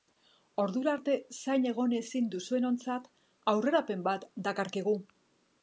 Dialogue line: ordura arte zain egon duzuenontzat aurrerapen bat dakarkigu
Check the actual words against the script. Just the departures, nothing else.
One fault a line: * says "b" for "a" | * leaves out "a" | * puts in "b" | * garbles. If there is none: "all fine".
* puts in "ezin"